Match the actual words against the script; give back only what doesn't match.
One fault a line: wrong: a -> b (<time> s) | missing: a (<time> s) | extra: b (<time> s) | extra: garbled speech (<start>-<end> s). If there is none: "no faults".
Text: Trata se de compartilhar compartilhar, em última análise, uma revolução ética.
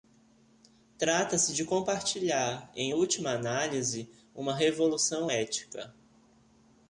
missing: compartilhar (2.7 s)